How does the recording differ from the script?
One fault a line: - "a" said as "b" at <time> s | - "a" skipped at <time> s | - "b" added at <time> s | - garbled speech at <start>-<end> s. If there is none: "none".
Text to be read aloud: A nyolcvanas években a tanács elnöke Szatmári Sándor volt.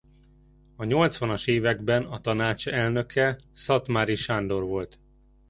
none